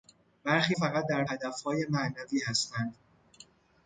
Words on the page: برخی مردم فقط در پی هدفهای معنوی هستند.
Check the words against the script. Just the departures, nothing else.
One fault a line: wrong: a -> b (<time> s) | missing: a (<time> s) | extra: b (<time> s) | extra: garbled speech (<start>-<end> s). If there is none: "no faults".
missing: مردم (0.8 s)
missing: پی (1.2 s)